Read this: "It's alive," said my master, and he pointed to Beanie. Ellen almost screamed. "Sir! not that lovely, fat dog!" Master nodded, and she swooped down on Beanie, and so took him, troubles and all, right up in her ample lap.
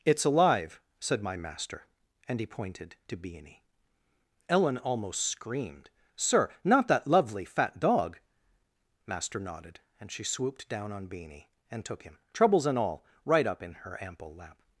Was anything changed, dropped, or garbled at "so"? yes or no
yes